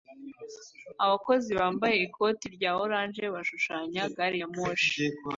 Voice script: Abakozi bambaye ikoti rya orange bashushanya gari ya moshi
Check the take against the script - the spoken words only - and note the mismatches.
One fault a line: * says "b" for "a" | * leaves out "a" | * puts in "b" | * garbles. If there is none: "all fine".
all fine